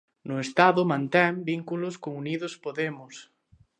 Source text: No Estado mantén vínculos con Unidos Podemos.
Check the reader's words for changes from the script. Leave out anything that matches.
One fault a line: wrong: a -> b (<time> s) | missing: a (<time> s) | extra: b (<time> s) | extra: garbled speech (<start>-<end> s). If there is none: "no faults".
no faults